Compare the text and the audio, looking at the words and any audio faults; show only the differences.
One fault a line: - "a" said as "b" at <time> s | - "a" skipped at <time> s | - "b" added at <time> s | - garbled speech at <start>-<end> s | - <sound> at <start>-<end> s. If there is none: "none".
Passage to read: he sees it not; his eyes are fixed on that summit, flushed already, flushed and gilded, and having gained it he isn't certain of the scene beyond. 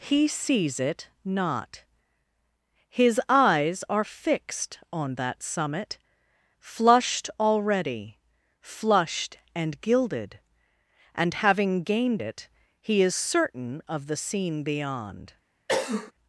- "isn't" said as "is" at 13.0 s
- cough at 15.7-16.1 s